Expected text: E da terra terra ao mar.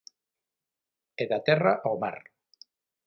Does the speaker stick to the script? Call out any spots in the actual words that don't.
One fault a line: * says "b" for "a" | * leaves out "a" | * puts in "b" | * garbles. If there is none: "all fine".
* leaves out "terra"